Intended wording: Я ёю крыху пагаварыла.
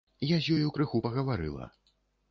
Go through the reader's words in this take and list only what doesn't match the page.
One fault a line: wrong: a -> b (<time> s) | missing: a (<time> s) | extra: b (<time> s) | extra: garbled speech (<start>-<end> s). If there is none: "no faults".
extra: з (0.5 s)